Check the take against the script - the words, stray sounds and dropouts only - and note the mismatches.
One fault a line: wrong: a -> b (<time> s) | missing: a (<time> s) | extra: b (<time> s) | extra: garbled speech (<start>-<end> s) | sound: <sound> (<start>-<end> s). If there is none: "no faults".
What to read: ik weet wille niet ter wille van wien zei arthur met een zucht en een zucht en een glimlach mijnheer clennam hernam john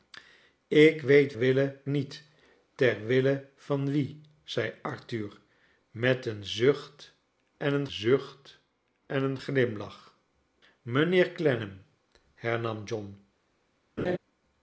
sound: laugh (14.0-14.2 s)